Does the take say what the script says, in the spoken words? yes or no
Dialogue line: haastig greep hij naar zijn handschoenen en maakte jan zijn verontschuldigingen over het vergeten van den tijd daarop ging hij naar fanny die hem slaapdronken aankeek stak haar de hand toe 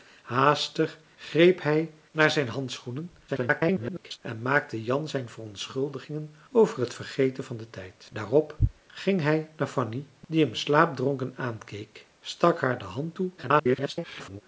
no